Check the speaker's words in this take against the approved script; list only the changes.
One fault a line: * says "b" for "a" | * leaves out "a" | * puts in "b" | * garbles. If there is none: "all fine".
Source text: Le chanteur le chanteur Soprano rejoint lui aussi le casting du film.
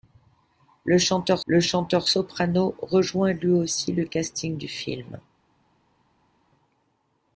all fine